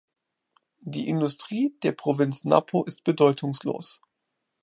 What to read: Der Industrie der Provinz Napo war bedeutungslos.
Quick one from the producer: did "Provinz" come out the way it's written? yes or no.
yes